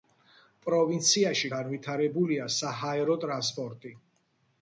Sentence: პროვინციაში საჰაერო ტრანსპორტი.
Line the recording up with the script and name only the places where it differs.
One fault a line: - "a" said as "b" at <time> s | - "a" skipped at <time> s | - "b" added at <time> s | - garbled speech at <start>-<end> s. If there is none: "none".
- "განვითარებულია" added at 1.5 s